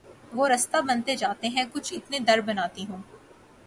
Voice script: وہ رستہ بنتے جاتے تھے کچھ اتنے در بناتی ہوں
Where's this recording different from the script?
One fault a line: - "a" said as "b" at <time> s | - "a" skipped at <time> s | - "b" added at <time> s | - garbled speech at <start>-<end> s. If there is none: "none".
- "تھے" said as "ہیں" at 1.5 s